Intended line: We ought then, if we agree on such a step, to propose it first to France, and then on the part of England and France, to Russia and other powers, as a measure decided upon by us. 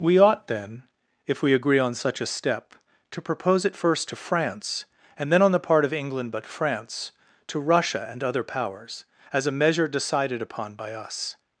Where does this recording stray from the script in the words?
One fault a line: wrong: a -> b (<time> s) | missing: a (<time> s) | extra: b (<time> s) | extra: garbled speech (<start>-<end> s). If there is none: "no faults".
wrong: and -> but (6.3 s)